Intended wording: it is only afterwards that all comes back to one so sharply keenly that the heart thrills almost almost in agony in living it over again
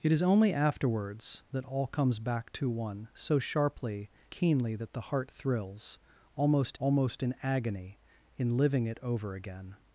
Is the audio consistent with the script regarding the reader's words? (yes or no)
yes